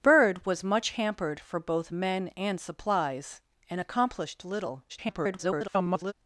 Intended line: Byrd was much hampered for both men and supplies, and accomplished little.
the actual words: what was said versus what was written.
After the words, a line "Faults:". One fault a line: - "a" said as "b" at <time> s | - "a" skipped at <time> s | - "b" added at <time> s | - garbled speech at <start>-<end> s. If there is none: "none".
Byrd was much hampered for both men and supplies, and accomplished little. [garbled]
Faults:
- garbled speech at 4.9-6.1 s